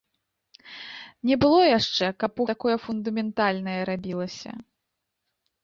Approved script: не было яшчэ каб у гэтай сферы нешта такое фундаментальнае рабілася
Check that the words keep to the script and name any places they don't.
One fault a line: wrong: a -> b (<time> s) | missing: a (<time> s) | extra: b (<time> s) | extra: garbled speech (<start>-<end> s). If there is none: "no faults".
missing: гэтай сферы нешта (2.5 s)